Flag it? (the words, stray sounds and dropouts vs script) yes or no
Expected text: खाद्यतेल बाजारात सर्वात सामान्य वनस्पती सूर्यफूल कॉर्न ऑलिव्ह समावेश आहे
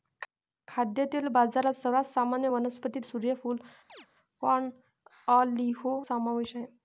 yes